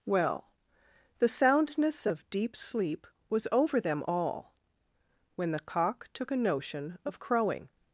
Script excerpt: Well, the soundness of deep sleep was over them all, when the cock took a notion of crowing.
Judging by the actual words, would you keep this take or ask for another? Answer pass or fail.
pass